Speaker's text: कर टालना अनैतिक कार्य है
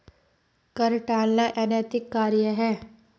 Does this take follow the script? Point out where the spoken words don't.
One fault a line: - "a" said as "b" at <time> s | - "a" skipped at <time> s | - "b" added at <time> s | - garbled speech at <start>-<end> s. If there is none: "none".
none